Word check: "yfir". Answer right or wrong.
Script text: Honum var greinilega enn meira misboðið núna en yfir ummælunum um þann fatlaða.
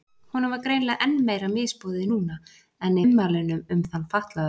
wrong